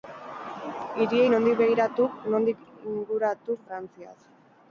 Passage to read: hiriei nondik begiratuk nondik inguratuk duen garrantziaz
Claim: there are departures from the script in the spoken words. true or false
true